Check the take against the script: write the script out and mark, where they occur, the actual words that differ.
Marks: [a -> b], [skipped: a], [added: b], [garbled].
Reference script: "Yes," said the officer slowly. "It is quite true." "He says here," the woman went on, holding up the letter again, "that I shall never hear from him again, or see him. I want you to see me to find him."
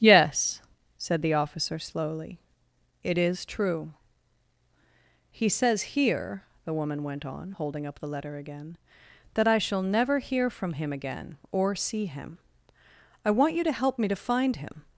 "Yes," said the officer slowly. "It is [skipped: quite] true." "He says here," the woman went on, holding up the letter again, "that I shall never hear from him again, or see him. I want you to [see -> help] me to find him."